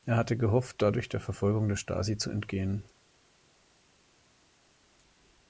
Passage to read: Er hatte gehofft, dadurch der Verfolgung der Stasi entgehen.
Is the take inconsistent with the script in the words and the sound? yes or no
yes